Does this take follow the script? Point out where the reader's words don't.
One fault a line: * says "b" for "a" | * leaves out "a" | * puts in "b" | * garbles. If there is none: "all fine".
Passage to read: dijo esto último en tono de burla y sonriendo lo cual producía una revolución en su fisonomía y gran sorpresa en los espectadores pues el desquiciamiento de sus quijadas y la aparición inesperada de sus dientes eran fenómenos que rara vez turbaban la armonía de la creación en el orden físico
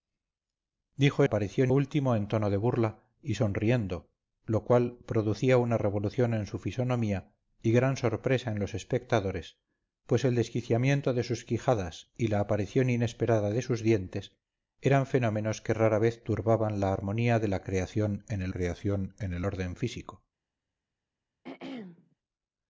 * says "aparición" for "esto"
* puts in "creación en el"